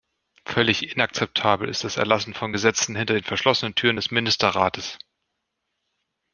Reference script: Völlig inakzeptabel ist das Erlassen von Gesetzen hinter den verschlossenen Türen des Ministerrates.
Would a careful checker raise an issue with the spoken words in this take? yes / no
no